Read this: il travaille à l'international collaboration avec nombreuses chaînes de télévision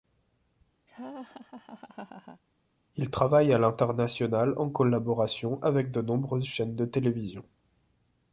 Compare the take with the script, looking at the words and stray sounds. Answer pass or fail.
fail